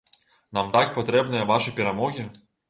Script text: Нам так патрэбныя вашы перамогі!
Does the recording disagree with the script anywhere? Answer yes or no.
no